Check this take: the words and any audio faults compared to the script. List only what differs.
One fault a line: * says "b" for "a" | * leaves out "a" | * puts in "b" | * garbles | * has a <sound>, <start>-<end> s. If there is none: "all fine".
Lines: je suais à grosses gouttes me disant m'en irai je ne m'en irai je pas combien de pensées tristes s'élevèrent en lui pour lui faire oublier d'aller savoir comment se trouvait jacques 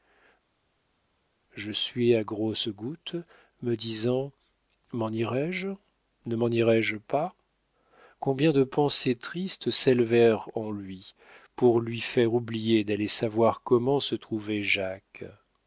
all fine